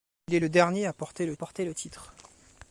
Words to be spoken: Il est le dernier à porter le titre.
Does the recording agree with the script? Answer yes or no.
no